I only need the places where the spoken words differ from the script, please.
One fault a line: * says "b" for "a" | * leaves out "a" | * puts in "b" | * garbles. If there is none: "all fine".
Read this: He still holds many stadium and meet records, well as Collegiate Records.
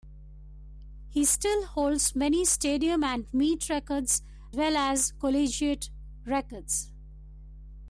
all fine